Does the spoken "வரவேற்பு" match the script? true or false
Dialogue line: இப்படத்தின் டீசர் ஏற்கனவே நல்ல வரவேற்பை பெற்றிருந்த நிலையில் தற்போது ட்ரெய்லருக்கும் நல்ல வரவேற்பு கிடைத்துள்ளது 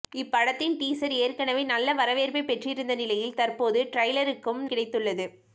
false